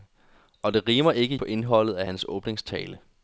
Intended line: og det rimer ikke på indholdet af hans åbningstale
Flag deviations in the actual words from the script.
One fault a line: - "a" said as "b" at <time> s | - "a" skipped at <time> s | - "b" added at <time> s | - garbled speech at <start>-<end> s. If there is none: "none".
none